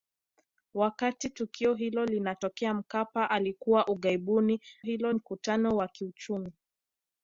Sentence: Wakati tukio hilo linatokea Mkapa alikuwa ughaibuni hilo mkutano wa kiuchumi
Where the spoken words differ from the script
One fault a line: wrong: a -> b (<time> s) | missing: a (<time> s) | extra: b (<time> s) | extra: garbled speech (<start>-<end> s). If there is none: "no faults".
no faults